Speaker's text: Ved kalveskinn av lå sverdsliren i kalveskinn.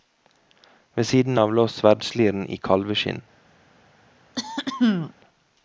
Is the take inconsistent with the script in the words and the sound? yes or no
yes